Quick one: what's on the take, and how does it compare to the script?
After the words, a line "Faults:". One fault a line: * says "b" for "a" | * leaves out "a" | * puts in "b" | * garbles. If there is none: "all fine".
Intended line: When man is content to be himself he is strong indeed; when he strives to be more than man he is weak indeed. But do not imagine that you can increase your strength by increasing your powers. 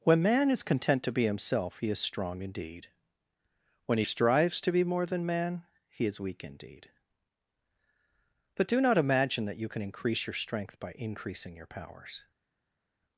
When man is content to be himself he is strong indeed; when he strives to be more than man he is weak indeed. But do not imagine that you can increase your strength by increasing your powers.
Faults:
all fine